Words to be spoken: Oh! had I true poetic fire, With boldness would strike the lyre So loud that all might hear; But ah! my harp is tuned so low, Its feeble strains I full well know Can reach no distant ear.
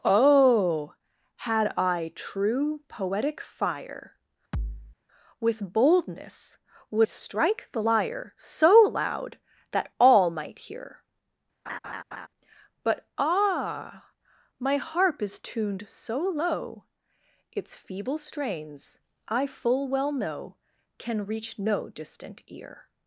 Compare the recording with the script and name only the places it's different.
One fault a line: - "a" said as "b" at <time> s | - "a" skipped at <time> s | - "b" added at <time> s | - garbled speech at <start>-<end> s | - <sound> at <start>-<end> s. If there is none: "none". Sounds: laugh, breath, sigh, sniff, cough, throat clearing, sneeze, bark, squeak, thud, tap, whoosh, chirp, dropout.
- thud at 4.5-5.0 s
- laugh at 11.7-12.3 s